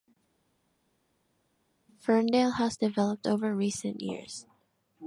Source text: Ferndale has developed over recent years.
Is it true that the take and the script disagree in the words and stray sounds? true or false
false